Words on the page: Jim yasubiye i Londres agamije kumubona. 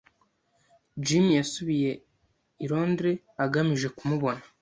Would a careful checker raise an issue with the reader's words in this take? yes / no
no